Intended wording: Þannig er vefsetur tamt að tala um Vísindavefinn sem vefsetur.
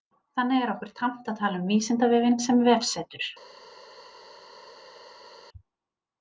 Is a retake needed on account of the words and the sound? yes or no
yes